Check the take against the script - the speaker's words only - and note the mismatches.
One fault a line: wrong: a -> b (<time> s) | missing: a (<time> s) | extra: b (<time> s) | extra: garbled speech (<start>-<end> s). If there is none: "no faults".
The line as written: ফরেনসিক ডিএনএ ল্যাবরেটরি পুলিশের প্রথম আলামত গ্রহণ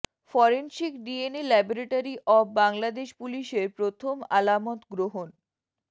extra: অব বাংলাদেশ (2.3 s)